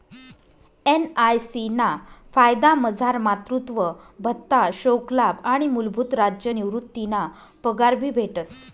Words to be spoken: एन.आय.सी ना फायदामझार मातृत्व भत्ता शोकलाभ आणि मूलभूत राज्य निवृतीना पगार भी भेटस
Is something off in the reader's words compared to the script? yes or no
no